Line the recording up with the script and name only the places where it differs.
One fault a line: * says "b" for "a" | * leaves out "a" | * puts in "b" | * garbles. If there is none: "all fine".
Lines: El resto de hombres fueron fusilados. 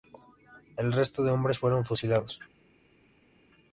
all fine